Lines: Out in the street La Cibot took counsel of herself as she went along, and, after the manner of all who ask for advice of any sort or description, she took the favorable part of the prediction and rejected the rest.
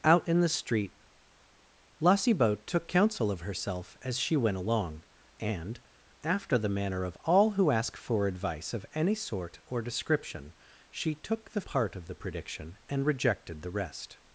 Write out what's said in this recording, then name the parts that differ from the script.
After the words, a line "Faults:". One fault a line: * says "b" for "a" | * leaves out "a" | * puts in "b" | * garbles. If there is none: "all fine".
Out in the street La Cibot took counsel of herself as she went along, and, after the manner of all who ask for advice of any sort or description, she took the part of the prediction and rejected the rest.
Faults:
* leaves out "favorable"